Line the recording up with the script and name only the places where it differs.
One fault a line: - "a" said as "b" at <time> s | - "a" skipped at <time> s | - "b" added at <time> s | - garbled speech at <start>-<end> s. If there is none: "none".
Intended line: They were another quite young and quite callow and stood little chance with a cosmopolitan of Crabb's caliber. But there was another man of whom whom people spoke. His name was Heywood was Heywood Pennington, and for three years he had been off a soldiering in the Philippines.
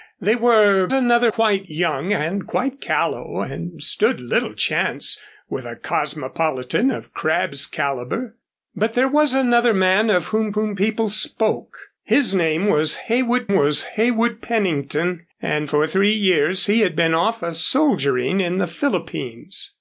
none